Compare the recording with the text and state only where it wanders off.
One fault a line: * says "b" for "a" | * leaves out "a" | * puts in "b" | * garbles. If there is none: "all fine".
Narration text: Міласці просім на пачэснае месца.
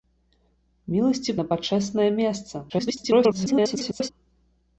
* leaves out "просім"
* garbles